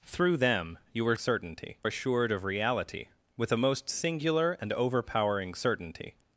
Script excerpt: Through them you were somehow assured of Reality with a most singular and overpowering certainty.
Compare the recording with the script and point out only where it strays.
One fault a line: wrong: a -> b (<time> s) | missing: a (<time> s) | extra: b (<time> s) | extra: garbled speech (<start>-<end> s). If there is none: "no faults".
wrong: somehow -> certainty (1.2 s)